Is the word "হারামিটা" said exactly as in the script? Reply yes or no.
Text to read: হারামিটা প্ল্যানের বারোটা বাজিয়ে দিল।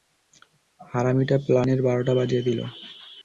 yes